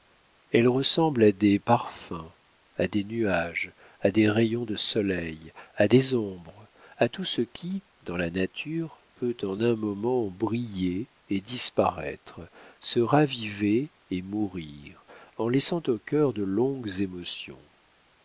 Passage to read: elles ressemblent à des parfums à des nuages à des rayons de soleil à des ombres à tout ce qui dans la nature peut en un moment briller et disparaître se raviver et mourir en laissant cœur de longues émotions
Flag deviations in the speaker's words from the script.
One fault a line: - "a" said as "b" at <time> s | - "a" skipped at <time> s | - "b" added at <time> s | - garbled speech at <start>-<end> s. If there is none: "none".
- "au" added at 15.9 s